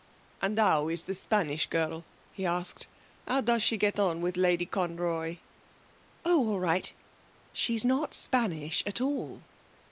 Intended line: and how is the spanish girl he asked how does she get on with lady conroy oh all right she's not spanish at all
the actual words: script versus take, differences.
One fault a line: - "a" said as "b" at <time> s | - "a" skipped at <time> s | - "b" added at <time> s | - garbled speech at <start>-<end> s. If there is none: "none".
none